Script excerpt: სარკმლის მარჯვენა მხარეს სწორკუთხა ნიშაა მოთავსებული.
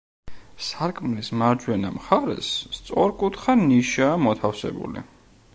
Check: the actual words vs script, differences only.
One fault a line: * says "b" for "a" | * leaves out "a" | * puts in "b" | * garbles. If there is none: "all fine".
all fine